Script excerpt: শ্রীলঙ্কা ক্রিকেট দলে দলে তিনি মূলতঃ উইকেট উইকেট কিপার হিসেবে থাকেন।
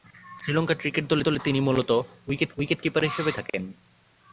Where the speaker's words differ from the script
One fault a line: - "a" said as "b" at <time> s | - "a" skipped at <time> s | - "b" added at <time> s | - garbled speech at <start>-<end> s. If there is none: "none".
none